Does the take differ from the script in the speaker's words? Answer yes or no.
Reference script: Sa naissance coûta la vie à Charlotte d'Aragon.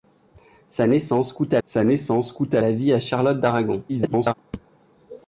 yes